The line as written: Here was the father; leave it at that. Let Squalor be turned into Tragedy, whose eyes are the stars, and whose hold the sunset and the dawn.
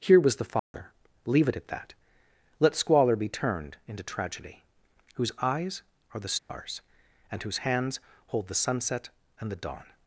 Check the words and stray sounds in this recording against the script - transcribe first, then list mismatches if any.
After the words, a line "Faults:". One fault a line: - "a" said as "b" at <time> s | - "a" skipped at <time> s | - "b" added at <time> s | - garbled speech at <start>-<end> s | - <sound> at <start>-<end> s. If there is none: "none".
Here was the father; leave it at that. Let Squalor be turned into Tragedy, whose eyes are the stars, and whose hands hold the sunset and the dawn.
Faults:
- dropout at 0.6-0.7 s
- dropout at 6.4-6.5 s
- "hands" added at 7.6 s